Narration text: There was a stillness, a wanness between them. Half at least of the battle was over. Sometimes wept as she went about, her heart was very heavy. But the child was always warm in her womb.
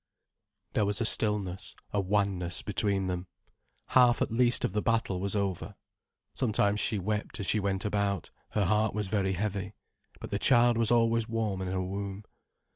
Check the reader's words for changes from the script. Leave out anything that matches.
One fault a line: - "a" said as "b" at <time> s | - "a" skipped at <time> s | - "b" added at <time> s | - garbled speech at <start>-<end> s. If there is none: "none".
- "she" added at 6.8 s